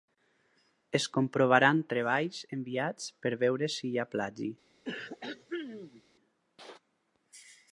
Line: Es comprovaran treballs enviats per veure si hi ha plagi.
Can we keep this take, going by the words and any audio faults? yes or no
no